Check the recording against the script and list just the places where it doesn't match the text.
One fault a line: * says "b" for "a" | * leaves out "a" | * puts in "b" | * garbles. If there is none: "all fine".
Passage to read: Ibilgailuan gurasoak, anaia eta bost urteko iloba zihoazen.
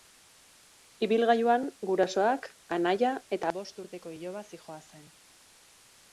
all fine